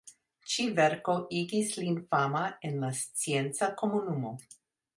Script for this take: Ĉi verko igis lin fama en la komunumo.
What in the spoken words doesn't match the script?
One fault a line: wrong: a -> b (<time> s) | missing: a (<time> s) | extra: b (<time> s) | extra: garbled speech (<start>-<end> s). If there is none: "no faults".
extra: scienca (3.0 s)